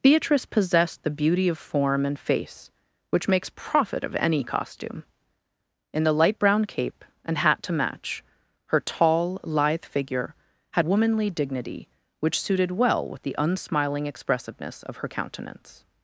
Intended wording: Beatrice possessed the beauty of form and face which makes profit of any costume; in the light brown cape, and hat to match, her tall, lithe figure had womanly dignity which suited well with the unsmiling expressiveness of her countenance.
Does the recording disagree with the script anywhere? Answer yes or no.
no